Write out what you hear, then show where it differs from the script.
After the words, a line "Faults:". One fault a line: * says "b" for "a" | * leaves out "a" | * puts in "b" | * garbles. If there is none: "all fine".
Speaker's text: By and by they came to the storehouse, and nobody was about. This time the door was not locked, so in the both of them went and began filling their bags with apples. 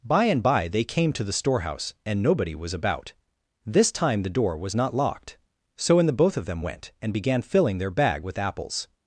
By and by they came to the storehouse, and nobody was about. This time the door was not locked, so in the both of them went and began filling their bag with apples.
Faults:
* says "bag" for "bags"